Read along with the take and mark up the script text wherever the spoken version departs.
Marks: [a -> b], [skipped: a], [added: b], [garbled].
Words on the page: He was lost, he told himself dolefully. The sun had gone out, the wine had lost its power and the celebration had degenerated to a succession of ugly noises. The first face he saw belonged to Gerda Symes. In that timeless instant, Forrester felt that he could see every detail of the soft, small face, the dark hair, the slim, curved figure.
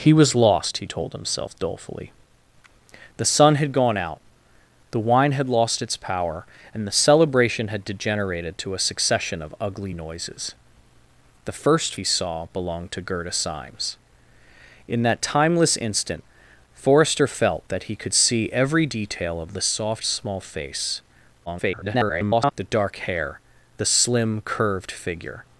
He was lost, he told himself dolefully. The sun had gone out, the wine had lost its power and the celebration had degenerated to a succession of ugly noises. The first [skipped: face] he saw belonged to Gerda Symes. In that timeless instant, Forrester felt that he could see every detail of the soft, small face, [garbled] the dark hair, the slim, curved figure.